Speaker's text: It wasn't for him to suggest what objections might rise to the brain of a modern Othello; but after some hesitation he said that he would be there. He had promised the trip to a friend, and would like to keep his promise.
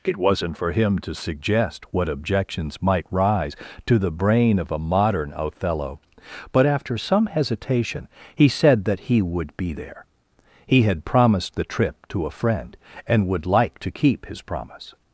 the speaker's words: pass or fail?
pass